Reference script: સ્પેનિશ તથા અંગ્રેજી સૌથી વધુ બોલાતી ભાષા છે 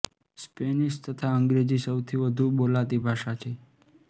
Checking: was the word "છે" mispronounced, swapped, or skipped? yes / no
no